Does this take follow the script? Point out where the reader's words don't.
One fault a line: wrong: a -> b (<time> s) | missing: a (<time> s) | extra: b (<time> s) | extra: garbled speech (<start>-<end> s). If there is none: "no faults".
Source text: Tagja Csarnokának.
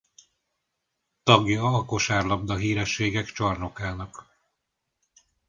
extra: a Kosárlabda Hírességek (1.6 s)